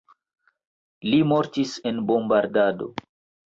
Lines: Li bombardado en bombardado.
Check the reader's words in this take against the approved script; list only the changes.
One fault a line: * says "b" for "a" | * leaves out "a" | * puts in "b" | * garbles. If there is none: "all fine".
* says "mortis" for "bombardado"